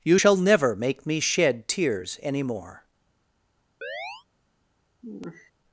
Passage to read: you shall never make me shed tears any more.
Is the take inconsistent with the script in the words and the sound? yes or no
yes